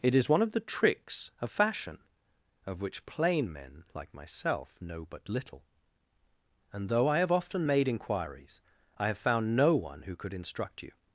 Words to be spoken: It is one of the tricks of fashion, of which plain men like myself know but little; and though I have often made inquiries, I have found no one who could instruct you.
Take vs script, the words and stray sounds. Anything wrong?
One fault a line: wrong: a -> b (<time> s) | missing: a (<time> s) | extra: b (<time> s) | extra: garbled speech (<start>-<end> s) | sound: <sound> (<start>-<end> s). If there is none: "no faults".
no faults